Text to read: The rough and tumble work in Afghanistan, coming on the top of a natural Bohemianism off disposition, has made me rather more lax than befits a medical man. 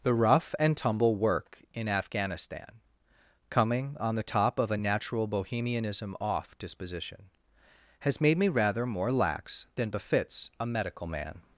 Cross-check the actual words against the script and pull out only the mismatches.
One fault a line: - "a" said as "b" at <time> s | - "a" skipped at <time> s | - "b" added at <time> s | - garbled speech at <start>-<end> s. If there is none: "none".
none